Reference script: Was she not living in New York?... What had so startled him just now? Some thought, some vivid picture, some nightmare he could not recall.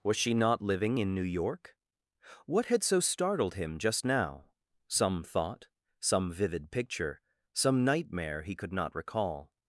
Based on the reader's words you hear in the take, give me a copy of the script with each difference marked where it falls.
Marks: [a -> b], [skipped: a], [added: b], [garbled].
Was she not living in New York?... What had so startled him just now? Some thought, some vivid picture, some nightmare he could not recall.